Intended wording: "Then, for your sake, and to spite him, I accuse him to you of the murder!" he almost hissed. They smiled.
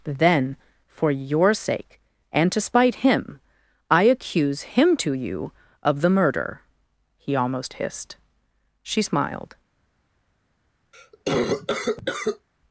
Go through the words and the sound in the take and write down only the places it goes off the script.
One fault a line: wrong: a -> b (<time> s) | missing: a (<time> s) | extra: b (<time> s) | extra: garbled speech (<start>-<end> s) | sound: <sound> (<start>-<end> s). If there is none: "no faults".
wrong: They -> She (8.8 s)
sound: cough (10.9-12.5 s)